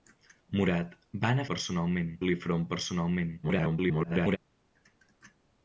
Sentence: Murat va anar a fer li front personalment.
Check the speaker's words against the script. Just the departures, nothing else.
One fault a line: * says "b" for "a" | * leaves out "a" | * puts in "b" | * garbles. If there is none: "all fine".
* says "personalment" for "fer"
* garbles